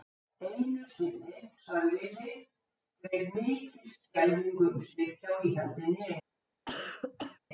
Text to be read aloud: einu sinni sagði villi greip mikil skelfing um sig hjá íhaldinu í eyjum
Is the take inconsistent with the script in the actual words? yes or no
no